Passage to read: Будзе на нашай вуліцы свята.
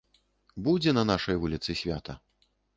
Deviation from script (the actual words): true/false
false